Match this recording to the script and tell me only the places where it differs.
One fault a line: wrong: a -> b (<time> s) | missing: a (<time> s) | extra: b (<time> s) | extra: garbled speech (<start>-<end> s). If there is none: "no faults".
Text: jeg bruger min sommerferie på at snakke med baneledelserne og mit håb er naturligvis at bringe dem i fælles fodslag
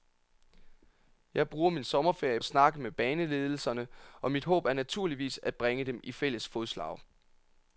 missing: på (2.4 s)